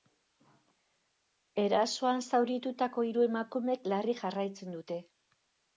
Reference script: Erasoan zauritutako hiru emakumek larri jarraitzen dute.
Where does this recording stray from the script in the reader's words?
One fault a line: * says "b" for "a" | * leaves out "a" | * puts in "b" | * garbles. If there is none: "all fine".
all fine